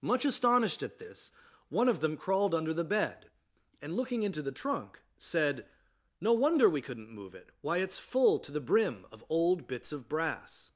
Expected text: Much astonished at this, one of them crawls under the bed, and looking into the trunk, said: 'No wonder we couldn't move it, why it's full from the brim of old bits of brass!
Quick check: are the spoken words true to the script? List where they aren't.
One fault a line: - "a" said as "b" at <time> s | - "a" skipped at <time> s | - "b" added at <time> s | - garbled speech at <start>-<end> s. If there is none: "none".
- "crawls" said as "crawled" at 2.2 s
- "from" said as "to" at 8.4 s